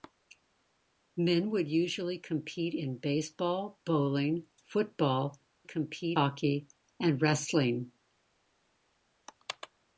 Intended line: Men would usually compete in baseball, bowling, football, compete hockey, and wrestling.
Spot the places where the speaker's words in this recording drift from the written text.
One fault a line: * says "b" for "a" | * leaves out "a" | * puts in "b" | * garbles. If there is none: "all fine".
all fine